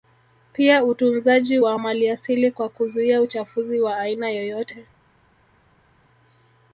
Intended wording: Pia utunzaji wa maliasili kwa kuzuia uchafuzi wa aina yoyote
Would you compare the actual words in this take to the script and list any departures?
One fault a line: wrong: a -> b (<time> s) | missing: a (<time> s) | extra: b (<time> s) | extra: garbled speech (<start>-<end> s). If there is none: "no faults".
no faults